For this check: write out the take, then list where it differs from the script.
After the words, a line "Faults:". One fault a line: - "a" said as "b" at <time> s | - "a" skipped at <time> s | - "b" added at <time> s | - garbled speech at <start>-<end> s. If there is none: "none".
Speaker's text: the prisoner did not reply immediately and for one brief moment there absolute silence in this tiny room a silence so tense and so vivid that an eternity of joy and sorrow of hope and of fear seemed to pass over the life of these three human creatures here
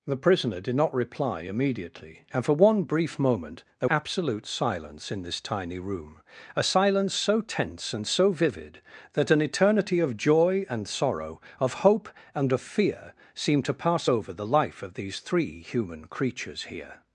the prisoner did not reply immediately and for one brief moment there absolute silence in this tiny room a silence so tense and so vivid that an eternity of joy and sorrow of hope and of fear seemed to pass over the life of these three human creatures here
Faults:
none